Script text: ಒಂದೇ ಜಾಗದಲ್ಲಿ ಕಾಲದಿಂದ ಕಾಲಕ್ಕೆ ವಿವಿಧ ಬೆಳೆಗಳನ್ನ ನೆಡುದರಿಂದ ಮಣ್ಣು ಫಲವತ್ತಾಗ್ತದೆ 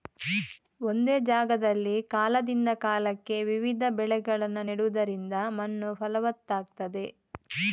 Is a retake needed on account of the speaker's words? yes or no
no